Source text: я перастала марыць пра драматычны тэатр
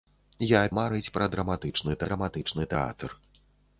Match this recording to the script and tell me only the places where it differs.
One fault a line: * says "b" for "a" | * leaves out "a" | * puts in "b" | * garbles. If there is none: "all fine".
* leaves out "перастала"
* puts in "драматычны"